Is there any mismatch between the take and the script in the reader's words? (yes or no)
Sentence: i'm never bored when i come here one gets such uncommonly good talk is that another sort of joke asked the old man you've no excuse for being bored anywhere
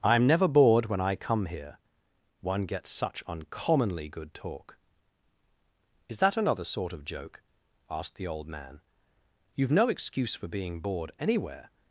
no